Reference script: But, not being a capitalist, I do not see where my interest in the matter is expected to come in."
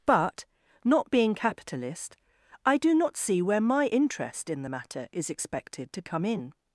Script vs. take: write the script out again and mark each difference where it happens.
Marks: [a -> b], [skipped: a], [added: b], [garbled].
But, not being [skipped: a] capitalist, I do not see where my interest in the matter is expected to come in."